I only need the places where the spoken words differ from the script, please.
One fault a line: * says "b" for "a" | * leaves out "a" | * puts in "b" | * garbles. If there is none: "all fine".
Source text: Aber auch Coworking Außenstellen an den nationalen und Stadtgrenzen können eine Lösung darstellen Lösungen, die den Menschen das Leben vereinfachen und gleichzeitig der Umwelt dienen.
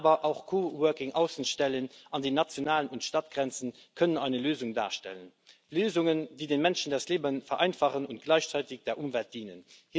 all fine